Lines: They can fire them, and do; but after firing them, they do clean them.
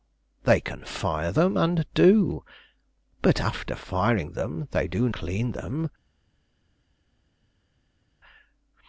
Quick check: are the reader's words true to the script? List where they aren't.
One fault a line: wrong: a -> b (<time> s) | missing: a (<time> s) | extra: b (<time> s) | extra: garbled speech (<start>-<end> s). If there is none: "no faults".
no faults